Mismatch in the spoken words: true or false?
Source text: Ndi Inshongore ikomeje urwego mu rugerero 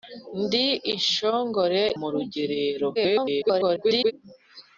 true